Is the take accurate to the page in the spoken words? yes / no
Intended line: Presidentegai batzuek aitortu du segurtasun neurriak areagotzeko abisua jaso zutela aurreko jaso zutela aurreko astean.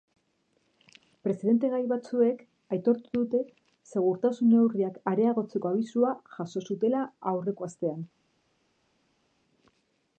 no